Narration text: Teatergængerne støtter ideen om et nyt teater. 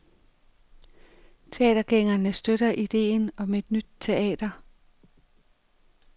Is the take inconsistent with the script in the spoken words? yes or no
no